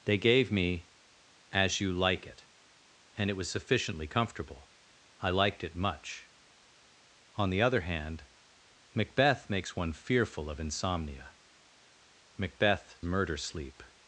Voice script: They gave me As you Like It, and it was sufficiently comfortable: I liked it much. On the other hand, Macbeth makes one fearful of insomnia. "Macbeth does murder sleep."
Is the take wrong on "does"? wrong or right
wrong